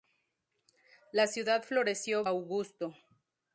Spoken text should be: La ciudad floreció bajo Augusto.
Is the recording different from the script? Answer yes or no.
yes